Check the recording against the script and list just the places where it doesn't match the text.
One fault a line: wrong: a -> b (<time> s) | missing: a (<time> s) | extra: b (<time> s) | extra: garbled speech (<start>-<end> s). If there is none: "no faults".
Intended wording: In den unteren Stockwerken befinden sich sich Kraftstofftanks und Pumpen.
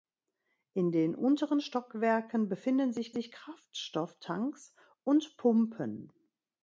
no faults